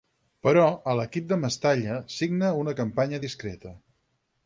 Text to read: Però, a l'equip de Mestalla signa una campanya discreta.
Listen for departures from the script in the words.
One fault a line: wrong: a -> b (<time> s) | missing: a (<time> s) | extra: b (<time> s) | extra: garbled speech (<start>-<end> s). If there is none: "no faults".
no faults